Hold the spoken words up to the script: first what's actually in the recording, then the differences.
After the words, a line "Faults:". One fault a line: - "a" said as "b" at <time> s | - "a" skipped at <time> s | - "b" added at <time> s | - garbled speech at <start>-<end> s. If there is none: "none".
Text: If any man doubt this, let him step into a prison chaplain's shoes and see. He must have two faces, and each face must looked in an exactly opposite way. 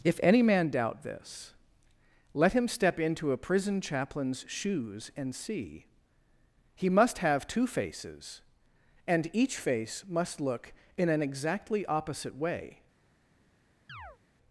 If any man doubt this, let him step into a prison chaplain's shoes and see. He must have two faces, and each face must look in an exactly opposite way.
Faults:
- "looked" said as "look" at 10.4 s